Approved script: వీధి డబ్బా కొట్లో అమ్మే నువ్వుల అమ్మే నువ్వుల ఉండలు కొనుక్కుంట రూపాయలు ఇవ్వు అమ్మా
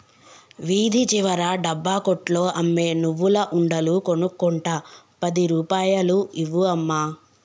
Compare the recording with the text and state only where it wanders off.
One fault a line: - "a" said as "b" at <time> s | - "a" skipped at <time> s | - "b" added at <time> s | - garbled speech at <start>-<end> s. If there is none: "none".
- "చివర" added at 1.1 s
- "అమ్మే నువ్వుల" skipped at 3.4 s
- "పది" added at 5.2 s